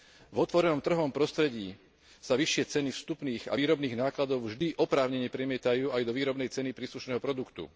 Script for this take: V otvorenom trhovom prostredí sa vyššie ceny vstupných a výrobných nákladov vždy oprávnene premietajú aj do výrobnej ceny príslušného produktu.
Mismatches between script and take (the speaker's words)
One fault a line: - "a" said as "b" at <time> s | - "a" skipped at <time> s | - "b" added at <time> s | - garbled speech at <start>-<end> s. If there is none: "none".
none